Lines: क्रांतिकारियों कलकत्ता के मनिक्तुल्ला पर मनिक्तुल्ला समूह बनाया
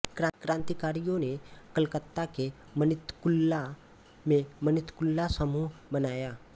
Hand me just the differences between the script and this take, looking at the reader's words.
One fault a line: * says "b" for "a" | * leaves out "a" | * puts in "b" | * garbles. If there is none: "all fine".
* puts in "ने"
* says "में" for "पर"